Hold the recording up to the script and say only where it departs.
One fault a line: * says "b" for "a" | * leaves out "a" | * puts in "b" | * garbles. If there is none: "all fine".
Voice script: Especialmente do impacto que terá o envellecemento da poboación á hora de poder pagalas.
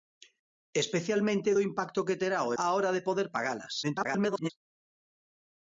* leaves out "envellecemento da poboación"
* garbles